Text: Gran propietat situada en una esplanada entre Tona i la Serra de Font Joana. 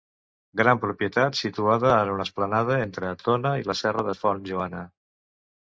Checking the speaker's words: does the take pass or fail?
pass